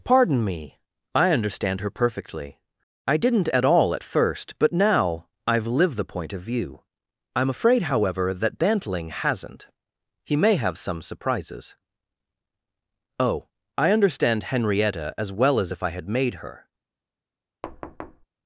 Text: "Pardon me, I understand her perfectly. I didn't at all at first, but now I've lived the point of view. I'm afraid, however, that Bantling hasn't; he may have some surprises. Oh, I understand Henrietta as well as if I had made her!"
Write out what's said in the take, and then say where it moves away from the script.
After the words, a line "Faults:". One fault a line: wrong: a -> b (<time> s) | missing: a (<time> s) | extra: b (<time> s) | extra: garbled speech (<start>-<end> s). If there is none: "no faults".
"Pardon me, I understand her perfectly. I didn't at all at first, but now I've lived the point of view. I'm afraid, however, that Bantling hasn't; he may have some surprises. Oh, I understand Henrietta as well as if I had made her!"
Faults:
no faults